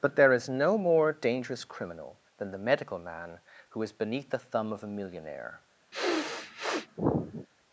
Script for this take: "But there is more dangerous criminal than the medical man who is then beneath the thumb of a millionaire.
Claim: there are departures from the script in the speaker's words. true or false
true